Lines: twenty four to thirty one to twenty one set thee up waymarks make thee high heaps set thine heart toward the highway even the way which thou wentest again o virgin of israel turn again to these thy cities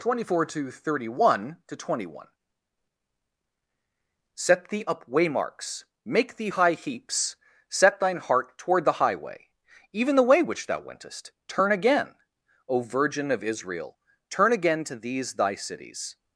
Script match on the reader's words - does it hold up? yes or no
no